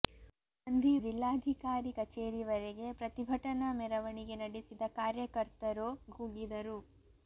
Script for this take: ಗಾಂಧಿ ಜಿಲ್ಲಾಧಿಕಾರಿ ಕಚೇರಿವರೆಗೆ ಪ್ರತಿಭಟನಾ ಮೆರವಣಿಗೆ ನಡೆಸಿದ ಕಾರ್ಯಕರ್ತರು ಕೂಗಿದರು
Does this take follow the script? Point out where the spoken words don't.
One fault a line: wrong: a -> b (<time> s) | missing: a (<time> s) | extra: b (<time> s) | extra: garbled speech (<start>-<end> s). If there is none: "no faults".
no faults